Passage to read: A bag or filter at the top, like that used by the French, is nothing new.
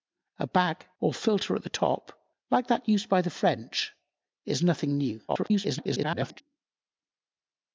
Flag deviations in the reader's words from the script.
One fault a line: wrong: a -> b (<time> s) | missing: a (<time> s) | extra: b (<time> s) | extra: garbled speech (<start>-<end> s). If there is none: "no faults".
extra: garbled speech (5.3-6.4 s)